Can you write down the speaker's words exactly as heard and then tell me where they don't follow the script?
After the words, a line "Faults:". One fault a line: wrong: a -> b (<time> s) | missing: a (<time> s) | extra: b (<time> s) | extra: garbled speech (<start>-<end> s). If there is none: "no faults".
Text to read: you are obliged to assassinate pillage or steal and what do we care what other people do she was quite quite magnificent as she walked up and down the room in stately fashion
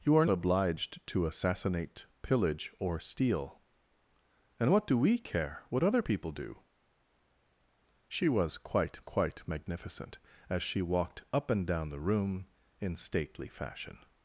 you are obliged to assassinate pillage or steal and what do we care what other people do she was quite quite magnificent as she walked up and down the room in stately fashion
Faults:
no faults